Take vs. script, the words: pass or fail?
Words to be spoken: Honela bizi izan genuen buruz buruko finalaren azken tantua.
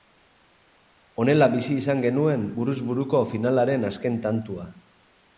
pass